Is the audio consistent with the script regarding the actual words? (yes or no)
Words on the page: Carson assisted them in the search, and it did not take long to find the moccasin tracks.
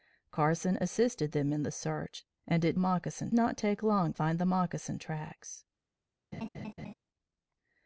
no